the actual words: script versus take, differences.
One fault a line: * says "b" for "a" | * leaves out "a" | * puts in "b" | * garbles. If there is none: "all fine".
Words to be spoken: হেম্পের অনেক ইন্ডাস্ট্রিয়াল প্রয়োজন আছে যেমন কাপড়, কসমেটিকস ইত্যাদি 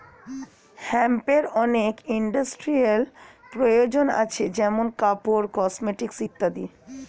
all fine